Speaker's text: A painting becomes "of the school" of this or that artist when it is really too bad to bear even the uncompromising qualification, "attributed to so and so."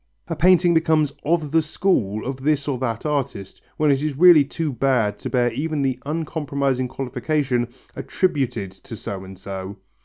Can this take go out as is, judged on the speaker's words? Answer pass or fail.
pass